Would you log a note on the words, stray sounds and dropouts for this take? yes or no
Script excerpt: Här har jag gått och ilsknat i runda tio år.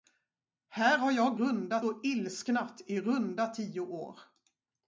yes